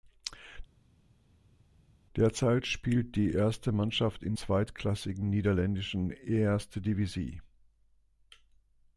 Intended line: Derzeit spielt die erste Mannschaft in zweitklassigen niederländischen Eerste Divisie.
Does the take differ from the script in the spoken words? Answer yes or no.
no